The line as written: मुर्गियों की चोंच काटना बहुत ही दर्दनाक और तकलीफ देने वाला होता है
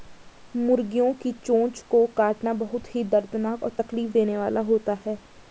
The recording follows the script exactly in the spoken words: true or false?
false